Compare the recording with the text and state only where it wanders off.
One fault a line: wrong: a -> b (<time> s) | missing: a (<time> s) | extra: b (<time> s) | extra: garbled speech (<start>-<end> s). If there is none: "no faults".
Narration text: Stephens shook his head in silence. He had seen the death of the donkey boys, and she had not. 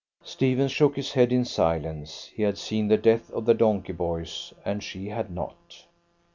no faults